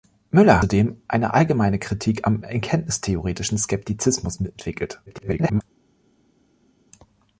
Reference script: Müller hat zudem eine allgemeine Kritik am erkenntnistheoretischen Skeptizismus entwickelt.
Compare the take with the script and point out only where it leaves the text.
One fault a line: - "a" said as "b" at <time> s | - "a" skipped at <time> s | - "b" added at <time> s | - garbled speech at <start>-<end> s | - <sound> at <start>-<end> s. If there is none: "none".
- "hat" skipped at 0.7 s
- garbled speech at 5.1-5.6 s